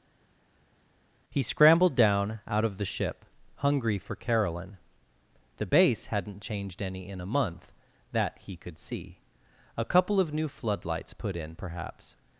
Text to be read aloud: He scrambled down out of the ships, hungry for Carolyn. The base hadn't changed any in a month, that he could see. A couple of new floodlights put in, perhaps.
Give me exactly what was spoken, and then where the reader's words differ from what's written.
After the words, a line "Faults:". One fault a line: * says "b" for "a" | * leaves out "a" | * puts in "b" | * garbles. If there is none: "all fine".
He scrambled down out of the ship, hungry for Carolyn. The base hadn't changed any in a month, that he could see. A couple of new floodlights put in, perhaps.
Faults:
* says "ship" for "ships"